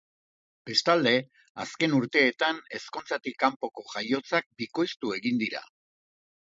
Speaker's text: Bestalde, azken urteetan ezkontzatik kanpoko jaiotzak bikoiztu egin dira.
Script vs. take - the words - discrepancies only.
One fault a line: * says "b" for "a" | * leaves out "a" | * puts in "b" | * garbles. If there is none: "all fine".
all fine